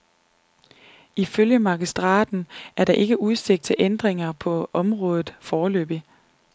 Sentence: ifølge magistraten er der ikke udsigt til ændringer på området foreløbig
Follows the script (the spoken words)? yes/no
yes